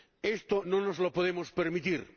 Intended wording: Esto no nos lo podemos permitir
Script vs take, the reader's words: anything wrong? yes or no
no